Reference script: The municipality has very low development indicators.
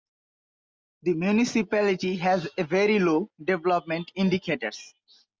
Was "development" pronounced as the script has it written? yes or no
yes